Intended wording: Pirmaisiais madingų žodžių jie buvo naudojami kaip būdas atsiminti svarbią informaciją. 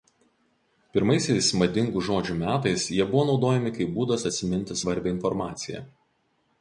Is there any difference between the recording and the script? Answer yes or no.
yes